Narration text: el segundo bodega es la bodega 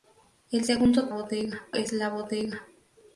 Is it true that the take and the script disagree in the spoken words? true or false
false